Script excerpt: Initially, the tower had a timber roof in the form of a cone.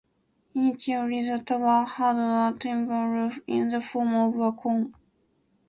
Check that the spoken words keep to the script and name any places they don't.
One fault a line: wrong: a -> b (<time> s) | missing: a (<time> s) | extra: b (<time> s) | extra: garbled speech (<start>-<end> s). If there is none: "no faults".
no faults